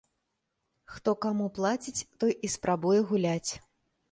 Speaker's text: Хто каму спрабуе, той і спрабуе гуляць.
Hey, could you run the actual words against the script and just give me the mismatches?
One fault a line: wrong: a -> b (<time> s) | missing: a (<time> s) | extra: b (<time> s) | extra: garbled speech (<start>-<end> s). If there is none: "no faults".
wrong: спрабуе -> плаціць (1.6 s)